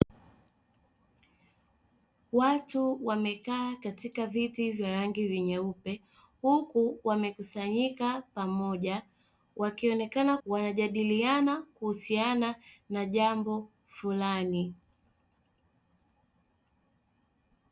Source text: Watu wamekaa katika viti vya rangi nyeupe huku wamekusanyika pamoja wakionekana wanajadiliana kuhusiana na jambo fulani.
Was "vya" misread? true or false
false